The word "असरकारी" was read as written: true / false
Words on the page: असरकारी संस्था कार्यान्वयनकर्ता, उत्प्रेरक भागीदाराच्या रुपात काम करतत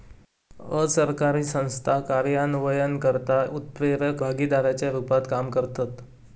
true